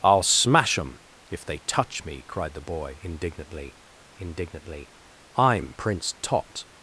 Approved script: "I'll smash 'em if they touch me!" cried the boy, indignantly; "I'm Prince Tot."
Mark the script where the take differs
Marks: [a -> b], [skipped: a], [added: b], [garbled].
"I'll smash 'em if they touch me!" cried the boy, indignantly; [added: indignantly] "I'm Prince Tot."